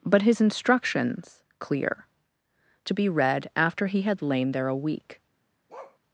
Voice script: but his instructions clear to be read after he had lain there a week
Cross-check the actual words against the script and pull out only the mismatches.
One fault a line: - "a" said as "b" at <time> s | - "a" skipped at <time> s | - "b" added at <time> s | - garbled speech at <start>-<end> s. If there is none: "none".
none